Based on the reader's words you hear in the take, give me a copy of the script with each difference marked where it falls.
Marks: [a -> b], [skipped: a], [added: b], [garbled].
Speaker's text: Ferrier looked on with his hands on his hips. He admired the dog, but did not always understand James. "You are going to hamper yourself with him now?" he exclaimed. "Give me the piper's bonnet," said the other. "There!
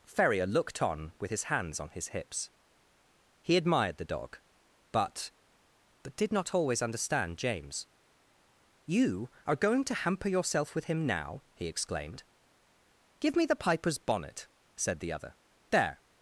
Ferrier looked on with his hands on his hips. He admired the dog, but [added: but] did not always understand James. "You are going to hamper yourself with him now?" he exclaimed. "Give me the piper's bonnet," said the other. "There!